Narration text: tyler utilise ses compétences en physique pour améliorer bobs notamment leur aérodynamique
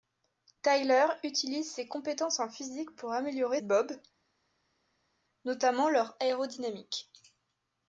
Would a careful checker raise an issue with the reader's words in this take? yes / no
no